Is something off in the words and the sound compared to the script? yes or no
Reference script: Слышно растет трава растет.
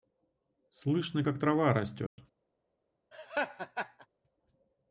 yes